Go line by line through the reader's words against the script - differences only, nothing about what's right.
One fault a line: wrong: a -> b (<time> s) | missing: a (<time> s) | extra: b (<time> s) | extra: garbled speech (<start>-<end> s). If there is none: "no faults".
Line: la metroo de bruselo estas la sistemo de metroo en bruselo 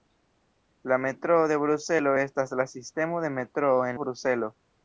no faults